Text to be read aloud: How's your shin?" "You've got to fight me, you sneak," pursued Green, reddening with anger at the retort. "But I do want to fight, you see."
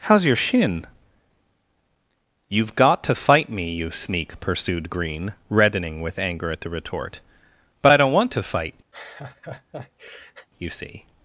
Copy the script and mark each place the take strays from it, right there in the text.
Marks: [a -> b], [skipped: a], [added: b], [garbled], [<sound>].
How's your shin?" "You've got to fight me, you sneak," pursued Green, reddening with anger at the retort. "But I [do -> don't] want to fight, [laugh] you see."